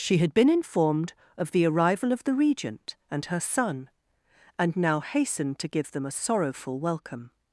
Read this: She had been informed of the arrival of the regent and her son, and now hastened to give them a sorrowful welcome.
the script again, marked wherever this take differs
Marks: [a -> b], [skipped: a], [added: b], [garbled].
She had been informed of the arrival of the regent and her son, and now hastened to give them a sorrowful welcome.